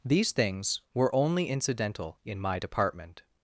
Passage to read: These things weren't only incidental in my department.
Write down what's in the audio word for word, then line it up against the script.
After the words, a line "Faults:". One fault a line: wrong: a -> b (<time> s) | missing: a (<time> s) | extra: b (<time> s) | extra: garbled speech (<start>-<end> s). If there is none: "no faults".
These things were only incidental in my department.
Faults:
wrong: weren't -> were (0.9 s)